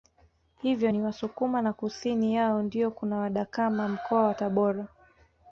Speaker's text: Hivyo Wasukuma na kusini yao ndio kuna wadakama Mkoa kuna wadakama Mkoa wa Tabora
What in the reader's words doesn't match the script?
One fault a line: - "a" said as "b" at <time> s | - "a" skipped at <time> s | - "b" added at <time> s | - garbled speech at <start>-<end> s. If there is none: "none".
- "ni" added at 0.9 s
- "kuna wadakama Mkoa" skipped at 4.2 s